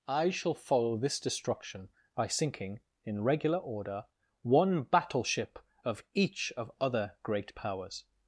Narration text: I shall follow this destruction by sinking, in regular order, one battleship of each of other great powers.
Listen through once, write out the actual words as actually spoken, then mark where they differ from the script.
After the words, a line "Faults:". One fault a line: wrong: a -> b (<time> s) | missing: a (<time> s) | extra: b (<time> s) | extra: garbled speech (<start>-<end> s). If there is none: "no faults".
I shall follow this destruction by sinking, in regular order, one battleship of each of other great powers.
Faults:
no faults